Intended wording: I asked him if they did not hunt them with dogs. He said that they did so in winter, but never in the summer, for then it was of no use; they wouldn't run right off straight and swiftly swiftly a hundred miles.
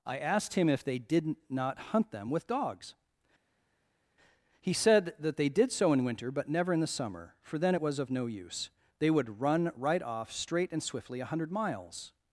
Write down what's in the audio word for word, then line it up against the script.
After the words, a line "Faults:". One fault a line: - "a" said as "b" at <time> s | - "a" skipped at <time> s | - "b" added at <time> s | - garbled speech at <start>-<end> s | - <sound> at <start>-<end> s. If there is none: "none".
I asked him if they did not hunt them with dogs. He said that they did so in winter, but never in the summer, for then it was of no use; they would run right off straight and swiftly a hundred miles.
Faults:
- "wouldn't" said as "would" at 9.1 s
- "swiftly" skipped at 11.2 s